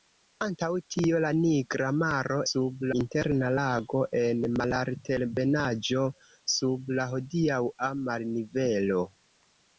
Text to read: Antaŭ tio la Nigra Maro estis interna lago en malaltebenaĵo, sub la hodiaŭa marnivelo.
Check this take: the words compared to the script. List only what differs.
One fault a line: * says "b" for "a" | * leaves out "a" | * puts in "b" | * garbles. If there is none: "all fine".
* says "sub" for "estis"